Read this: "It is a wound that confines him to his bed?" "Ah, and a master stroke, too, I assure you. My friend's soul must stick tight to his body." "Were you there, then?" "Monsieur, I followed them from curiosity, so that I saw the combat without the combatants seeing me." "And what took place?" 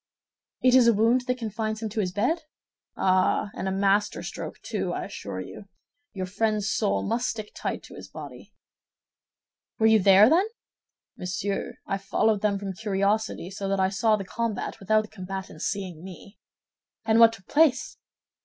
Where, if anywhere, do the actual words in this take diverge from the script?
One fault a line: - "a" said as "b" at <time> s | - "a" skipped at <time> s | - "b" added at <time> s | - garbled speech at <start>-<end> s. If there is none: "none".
- "My" said as "Your" at 6.1 s